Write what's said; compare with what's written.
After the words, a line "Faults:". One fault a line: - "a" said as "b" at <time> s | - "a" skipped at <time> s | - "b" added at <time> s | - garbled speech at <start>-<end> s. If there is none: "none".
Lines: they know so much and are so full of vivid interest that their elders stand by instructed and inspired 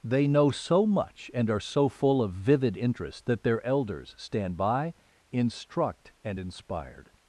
they know so much and are so full of vivid interest that their elders stand by instruct and inspired
Faults:
- "instructed" said as "instruct" at 5.3 s